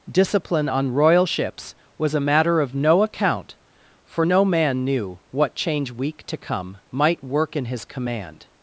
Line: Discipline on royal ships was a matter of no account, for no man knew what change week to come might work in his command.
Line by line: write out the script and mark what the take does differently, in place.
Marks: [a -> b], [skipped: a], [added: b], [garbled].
Discipline on royal ships was a matter of no account, for no man knew what change week to come might work in his command.